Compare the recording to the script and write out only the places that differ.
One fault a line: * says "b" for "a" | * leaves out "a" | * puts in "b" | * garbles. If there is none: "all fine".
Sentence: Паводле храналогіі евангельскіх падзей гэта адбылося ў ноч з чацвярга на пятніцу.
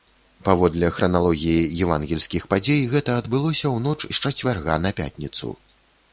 all fine